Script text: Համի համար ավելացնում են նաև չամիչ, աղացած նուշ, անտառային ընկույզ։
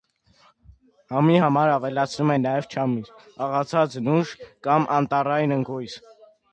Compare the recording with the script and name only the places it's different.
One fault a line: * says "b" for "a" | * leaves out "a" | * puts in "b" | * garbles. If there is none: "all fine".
* puts in "կամ"